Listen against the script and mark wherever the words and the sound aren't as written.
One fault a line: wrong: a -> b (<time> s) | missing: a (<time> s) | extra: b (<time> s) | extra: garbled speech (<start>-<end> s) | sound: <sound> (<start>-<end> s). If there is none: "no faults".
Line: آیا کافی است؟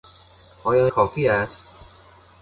no faults